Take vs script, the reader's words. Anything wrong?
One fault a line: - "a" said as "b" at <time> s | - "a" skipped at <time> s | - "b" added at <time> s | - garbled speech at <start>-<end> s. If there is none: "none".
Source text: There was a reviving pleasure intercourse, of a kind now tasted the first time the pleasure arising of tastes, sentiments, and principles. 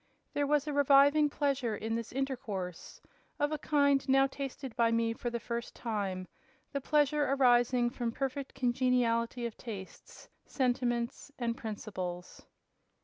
- "in this" added at 1.8 s
- "by me for" added at 4.8 s
- "from perfect congeniality" added at 7.9 s